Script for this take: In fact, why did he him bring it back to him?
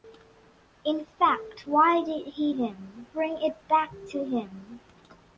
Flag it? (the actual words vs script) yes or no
no